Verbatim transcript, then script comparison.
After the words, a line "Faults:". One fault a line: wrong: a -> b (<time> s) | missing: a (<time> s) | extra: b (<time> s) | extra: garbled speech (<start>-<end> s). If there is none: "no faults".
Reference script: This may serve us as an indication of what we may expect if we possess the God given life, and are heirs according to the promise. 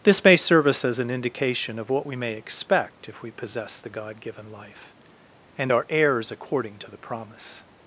This may serve us as an indication of what we may expect if we possess the God given life, and are heirs according to the promise.
Faults:
no faults